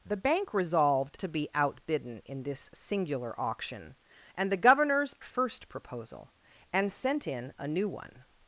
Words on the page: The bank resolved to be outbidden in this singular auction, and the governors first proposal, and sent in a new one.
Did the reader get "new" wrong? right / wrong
right